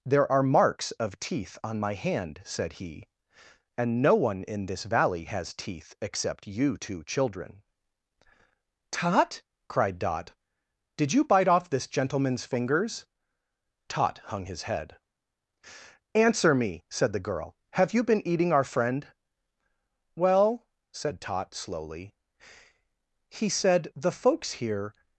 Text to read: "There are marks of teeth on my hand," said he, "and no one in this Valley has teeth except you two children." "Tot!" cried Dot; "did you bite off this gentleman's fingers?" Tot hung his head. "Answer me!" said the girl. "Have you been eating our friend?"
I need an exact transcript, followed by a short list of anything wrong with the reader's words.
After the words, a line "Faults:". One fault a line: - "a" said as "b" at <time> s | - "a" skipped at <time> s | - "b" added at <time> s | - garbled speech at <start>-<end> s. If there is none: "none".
"There are marks of teeth on my hand," said he, "and no one in this Valley has teeth except you two children." "Tot!" cried Dot; "did you bite off this gentleman's fingers?" Tot hung his head. "Answer me!" said the girl. "Have you been eating our friend?" "Well," said Tot, slowly, "he said the folks here
Faults:
- "Well said Tot slowly he said the folks here" added at 20.2 s